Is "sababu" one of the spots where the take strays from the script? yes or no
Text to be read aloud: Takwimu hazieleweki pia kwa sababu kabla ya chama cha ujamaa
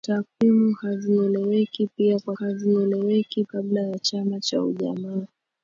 yes